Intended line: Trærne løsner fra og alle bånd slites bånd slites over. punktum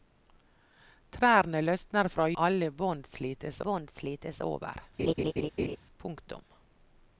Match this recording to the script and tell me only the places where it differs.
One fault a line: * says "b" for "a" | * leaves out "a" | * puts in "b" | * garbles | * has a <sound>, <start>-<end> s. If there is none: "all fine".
* has a laugh, 5.0-5.8 s